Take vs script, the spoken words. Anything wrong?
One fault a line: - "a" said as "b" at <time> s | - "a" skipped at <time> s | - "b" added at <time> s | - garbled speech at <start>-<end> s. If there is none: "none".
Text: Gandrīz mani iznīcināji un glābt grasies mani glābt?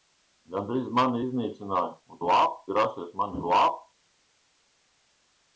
none